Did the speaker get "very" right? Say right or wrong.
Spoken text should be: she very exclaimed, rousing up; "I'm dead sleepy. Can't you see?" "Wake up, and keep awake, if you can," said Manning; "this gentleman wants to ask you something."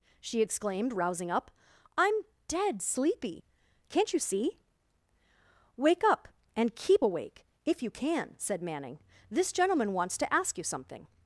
wrong